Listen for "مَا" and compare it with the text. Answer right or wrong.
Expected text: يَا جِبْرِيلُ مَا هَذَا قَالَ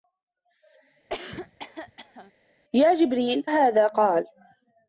wrong